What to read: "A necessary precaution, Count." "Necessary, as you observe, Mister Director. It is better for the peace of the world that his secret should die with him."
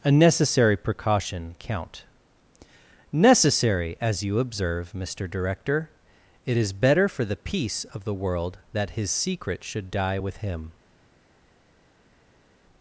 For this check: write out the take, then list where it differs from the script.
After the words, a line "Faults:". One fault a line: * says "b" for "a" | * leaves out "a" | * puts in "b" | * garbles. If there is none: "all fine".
"A necessary precaution, Count." "Necessary, as you observe, Mister Director. It is better for the peace of the world that his secret should die with him."
Faults:
all fine